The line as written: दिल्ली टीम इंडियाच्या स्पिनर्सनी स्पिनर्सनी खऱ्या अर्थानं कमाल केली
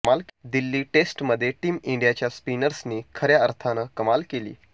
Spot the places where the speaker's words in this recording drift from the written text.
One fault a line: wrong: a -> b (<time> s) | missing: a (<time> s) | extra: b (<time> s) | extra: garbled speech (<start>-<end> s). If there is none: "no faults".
extra: टेस्टमध्ये (0.9 s)
missing: स्पिनर्सनी (3.0 s)